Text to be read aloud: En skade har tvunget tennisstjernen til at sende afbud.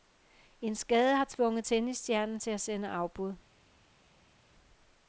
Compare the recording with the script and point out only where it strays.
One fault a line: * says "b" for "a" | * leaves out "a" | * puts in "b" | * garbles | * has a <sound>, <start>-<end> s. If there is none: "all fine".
all fine